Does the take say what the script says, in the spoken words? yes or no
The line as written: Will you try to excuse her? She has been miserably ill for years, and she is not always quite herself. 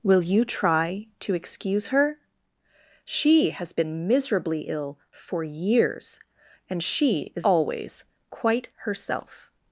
no